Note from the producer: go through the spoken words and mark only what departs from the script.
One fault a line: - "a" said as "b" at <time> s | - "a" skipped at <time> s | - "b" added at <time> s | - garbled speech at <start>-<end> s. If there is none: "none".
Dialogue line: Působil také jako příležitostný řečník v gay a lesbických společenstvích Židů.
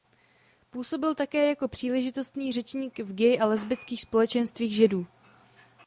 none